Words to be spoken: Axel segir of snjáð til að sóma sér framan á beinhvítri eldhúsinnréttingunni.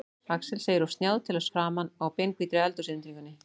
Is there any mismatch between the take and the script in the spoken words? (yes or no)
yes